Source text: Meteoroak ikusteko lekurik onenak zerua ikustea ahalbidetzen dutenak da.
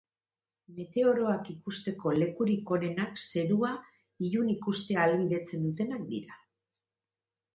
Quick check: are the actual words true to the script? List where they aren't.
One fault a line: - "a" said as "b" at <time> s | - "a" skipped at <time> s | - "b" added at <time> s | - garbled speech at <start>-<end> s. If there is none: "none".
- "ilun" added at 4.3 s
- "da" said as "dira" at 6.2 s